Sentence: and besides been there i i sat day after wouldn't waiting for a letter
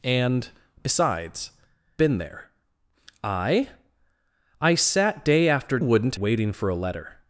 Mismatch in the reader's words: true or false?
false